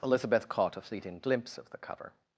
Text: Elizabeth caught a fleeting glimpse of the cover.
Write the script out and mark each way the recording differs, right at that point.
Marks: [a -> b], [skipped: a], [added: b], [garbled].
Elizabeth caught a fleeting glimpse of the cover.